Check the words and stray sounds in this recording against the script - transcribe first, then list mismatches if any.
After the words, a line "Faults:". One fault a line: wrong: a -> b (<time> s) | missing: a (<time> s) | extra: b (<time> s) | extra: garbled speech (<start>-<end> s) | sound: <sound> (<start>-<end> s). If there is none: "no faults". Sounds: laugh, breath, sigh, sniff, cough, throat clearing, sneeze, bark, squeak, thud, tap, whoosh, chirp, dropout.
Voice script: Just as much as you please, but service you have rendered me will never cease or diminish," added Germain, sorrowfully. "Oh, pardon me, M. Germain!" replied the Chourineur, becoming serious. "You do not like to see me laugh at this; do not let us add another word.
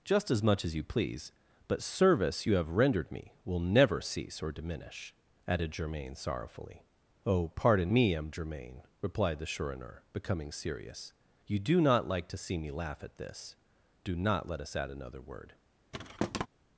Just as much as you please, but service you have rendered me will never cease or diminish," added Germain, sorrowfully. "Oh, pardon me, M. Germain!" replied the Chourineur, becoming serious. "You do not like to see me laugh at this; do not let us add another word.
Faults:
sound: thud (15.9-16.5 s)